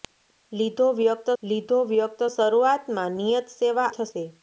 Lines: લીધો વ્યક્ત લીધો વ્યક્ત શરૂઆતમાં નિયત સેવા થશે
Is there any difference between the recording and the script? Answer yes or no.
no